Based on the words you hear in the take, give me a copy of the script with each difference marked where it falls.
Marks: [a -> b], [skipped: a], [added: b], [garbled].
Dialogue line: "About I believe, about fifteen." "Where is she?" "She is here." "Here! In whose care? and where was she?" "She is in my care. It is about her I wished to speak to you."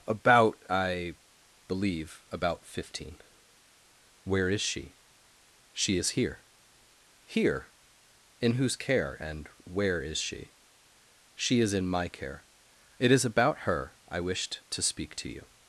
"About I believe, about fifteen." "Where is she?" "She is here." "Here! In whose care? and where [was -> is] she?" "She is in my care. It is about her I wished to speak to you."